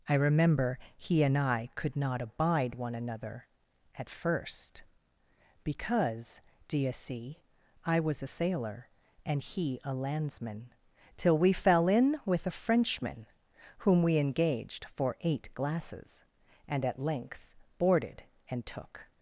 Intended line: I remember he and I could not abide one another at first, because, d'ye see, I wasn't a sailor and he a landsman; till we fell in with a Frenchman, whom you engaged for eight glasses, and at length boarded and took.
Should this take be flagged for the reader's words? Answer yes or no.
yes